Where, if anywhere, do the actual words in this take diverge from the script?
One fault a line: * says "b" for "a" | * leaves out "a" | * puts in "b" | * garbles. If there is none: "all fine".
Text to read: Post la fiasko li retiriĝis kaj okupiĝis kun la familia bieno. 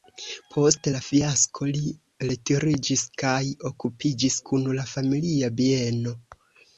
all fine